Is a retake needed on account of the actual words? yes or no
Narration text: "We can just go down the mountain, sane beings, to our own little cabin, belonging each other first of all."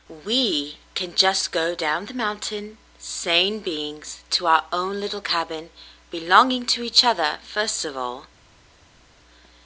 yes